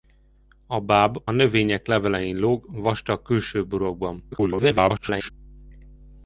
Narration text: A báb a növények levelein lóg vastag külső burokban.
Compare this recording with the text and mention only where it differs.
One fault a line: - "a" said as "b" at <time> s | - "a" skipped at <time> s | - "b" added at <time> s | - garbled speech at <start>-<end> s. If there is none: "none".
- "a" skipped at 1.2 s
- garbled speech at 4.3-5.3 s